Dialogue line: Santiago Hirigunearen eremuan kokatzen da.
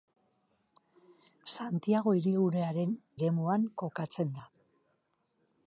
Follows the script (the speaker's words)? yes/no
yes